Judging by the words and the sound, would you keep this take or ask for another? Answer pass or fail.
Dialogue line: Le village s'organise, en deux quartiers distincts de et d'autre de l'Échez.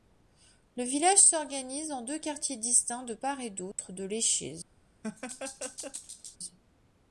fail